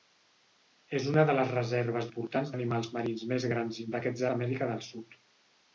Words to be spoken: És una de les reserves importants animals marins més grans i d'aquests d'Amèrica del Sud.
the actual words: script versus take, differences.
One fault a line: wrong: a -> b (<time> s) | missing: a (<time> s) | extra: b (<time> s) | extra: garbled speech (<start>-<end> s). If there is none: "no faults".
no faults